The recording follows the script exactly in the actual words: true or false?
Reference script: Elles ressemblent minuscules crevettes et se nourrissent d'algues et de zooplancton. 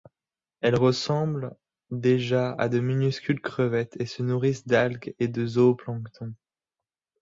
false